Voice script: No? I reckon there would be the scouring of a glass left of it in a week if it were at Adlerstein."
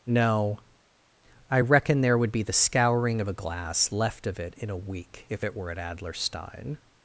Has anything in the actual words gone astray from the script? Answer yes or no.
no